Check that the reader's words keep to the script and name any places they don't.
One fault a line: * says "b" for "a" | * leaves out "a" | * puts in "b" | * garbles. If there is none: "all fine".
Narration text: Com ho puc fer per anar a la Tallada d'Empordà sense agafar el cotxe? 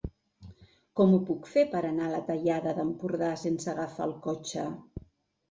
all fine